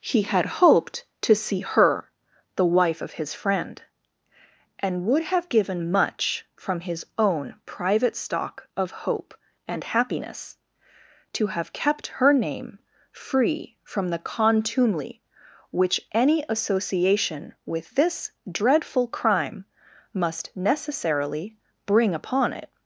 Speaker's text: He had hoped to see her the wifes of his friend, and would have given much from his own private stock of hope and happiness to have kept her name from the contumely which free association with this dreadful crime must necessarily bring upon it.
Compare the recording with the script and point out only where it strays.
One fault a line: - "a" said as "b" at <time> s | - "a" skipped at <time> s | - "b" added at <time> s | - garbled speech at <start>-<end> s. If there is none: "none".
- "wifes" said as "wife" at 2.6 s
- "free" added at 13.1 s
- "free" said as "any" at 16.1 s